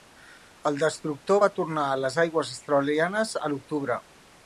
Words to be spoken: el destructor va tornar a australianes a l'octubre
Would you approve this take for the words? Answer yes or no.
no